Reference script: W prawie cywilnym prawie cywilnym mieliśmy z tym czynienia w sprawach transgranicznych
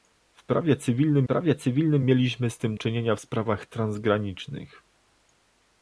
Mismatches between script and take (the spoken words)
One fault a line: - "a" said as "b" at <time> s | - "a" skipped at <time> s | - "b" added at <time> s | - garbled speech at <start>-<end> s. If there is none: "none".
none